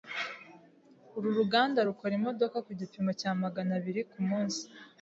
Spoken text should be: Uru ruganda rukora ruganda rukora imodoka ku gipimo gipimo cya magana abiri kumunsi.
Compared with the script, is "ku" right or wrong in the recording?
right